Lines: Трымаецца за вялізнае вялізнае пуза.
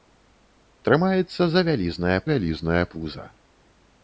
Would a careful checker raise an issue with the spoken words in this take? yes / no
no